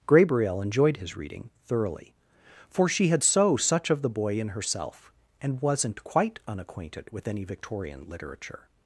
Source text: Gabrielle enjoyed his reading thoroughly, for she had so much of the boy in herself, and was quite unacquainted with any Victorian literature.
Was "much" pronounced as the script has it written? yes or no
no